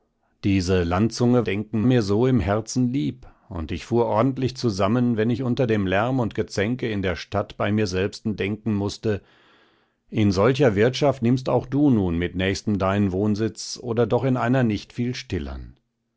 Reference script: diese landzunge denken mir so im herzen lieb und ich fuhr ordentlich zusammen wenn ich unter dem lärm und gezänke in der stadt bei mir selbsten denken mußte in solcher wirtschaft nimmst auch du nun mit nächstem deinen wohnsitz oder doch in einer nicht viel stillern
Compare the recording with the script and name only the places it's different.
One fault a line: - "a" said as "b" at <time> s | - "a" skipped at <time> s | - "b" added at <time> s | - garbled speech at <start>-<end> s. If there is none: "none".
none